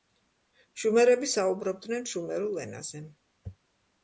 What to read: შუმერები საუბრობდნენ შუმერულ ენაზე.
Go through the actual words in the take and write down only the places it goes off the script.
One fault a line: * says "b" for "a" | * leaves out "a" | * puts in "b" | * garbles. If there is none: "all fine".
all fine